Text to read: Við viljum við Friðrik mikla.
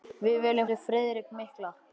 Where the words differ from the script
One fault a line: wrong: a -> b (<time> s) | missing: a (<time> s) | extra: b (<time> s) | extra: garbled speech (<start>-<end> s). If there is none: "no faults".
no faults